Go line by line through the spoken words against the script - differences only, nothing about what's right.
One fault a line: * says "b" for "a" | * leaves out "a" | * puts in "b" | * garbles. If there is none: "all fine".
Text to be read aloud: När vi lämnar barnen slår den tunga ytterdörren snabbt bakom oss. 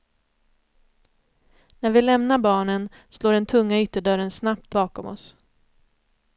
all fine